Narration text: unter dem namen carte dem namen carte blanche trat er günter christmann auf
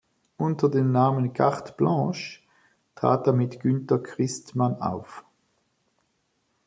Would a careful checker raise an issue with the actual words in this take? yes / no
yes